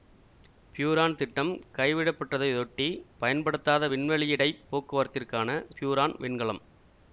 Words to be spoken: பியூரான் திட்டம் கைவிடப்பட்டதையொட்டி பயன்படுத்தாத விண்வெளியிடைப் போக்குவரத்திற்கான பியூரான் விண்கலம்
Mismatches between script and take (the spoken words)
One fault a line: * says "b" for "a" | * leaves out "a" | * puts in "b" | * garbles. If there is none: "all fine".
all fine